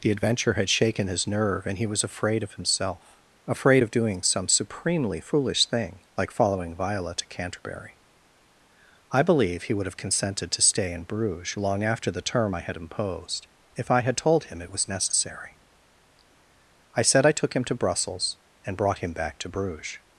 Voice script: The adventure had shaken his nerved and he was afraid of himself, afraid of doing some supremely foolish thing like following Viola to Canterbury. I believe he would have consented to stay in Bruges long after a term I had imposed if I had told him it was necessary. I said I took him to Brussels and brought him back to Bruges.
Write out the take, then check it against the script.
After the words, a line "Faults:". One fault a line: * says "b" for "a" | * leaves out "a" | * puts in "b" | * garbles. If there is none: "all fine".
The adventure had shaken his nerve and he was afraid of himself, afraid of doing some supremely foolish thing like following Viola to Canterbury. I believe he would have consented to stay in Bruges long after the term I had imposed if I had told him it was necessary. I said I took him to Brussels and brought him back to Bruges.
Faults:
* says "nerve" for "nerved"
* says "the" for "a"